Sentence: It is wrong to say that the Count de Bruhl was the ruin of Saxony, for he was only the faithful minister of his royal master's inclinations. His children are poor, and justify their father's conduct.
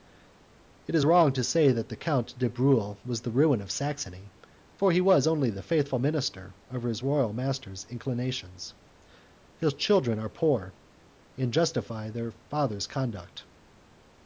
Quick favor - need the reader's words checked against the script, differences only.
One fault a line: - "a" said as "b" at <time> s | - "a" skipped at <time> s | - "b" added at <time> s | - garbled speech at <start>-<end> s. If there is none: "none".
none